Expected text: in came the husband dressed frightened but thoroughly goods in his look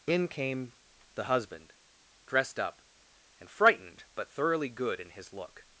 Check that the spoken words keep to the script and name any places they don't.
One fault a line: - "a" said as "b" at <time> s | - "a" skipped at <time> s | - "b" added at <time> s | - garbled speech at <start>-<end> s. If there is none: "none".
- "up and" added at 2.6 s
- "goods" said as "good" at 4.7 s